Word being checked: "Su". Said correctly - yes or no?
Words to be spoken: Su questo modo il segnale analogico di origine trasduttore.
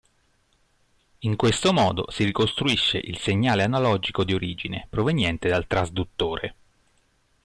no